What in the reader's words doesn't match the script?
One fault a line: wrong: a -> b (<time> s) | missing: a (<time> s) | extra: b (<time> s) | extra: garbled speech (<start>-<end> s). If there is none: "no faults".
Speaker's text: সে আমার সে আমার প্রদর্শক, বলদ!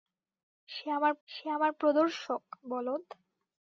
no faults